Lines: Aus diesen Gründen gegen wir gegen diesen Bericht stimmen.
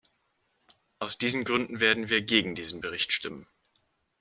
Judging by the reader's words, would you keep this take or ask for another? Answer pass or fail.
fail